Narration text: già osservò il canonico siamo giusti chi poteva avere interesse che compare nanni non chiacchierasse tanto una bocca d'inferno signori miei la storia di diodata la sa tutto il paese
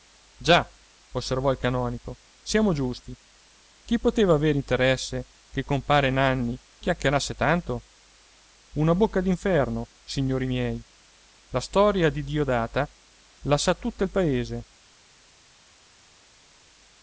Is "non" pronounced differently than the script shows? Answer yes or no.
yes